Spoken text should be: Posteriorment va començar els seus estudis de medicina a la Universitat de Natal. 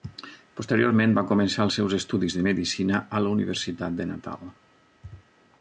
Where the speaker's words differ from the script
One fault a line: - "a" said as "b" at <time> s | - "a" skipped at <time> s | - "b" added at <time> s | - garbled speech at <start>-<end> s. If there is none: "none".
none